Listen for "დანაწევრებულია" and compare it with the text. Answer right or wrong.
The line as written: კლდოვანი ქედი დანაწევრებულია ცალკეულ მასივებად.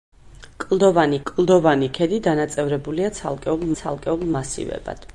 right